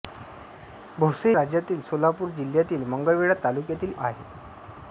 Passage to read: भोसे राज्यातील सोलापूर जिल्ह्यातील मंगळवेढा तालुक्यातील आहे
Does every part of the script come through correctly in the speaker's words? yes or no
yes